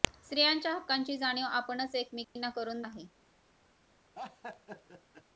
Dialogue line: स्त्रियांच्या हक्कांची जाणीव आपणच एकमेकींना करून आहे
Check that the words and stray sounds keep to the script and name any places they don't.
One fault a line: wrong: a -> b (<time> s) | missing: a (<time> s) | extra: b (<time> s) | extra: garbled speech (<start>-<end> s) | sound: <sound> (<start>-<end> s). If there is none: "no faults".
sound: dropout (2.2-2.4 s)
sound: laugh (4.1-5.2 s)